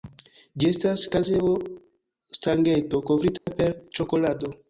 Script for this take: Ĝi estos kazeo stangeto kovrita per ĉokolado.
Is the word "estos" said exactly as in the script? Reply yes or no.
no